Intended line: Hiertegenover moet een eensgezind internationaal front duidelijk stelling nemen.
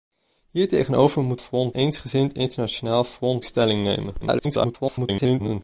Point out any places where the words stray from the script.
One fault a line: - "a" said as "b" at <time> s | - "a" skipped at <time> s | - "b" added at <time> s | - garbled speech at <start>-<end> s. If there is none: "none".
- "een" said as "front" at 1.4 s
- "duidelijk" skipped at 3.4 s
- garbled speech at 4.2-5.6 s